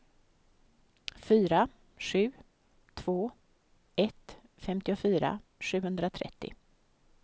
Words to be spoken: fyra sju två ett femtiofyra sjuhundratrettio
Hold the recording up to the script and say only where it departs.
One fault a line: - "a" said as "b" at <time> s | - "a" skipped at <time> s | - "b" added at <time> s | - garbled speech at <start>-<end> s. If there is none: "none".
none